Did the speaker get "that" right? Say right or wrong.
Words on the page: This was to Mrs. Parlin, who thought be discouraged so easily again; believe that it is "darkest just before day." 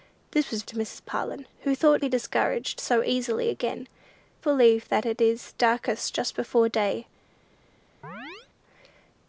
right